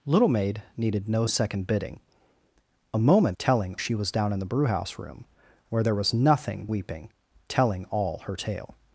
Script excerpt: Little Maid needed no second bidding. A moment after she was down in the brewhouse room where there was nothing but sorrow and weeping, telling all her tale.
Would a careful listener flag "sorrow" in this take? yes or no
yes